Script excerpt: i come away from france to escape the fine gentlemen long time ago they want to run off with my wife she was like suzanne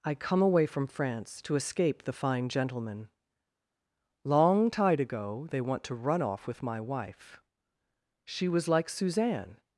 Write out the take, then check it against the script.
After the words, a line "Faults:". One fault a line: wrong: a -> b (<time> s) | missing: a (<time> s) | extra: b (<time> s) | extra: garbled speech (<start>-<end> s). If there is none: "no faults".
i come away from france to escape the fine gentlemen long tide ago they want to run off with my wife she was like suzanne
Faults:
wrong: time -> tide (4.7 s)